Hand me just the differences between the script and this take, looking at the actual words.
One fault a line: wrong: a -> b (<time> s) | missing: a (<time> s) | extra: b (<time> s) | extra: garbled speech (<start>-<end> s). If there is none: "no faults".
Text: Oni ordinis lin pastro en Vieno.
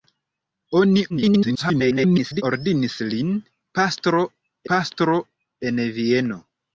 extra: garbled speech (1.1-2.4 s)
extra: pastro (4.8 s)